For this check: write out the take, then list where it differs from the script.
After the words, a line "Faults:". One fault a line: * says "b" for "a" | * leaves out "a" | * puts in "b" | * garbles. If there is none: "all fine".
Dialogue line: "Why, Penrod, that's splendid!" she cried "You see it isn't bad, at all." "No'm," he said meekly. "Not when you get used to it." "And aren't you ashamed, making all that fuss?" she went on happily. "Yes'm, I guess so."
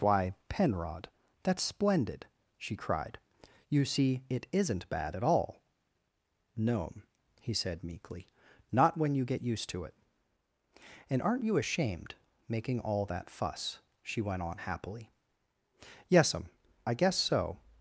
"Why, Penrod, that's splendid!" she cried "You see it isn't bad, at all." "No'm," he said meekly. "Not when you get used to it." "And aren't you ashamed, making all that fuss?" she went on happily. "Yes'm, I guess so."
Faults:
all fine